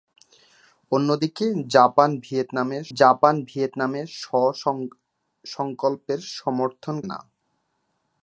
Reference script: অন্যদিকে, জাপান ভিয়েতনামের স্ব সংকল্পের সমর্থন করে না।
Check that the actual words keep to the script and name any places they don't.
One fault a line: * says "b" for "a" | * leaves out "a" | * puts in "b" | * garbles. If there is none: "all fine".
* puts in "জাপান ভিয়েতনামের"
* leaves out "করে"